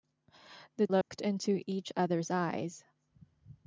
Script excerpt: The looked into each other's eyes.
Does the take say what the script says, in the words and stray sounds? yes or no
no